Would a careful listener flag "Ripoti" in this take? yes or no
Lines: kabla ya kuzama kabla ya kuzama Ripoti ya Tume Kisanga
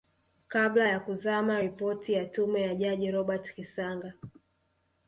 yes